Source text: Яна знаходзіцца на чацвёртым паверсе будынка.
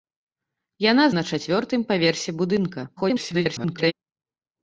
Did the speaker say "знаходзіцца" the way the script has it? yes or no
no